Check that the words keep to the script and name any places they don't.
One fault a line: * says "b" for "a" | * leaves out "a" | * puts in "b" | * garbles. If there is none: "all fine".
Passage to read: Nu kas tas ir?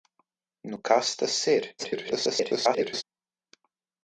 * garbles